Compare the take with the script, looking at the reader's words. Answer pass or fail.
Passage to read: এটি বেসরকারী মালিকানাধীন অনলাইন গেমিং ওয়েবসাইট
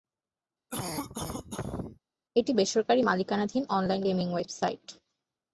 pass